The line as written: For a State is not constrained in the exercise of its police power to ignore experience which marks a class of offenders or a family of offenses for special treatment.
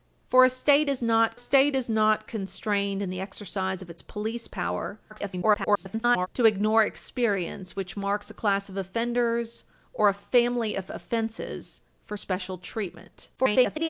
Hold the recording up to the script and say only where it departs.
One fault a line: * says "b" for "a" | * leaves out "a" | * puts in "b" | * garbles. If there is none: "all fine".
* puts in "State is not"
* garbles
* garbles